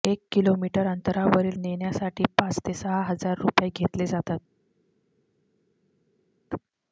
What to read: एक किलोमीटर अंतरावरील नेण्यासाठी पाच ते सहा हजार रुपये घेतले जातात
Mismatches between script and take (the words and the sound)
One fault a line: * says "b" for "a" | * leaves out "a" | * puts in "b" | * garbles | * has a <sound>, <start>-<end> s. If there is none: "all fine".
all fine